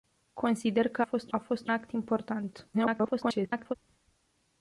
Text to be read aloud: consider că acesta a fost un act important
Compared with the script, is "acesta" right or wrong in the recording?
wrong